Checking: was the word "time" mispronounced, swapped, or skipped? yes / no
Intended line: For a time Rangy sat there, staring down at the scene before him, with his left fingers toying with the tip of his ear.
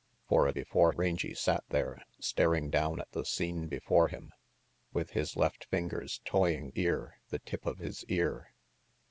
yes